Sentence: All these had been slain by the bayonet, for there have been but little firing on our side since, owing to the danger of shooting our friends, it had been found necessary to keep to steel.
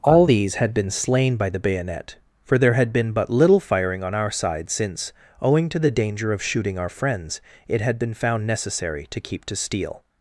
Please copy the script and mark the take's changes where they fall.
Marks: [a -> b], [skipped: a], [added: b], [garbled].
All these had been slain by the bayonet, for there [have -> had] been but little firing on our side since, owing to the danger of shooting our friends, it had been found necessary to keep to steel.